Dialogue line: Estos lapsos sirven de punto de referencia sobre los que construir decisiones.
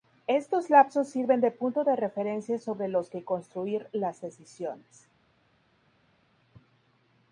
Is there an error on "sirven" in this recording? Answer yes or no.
no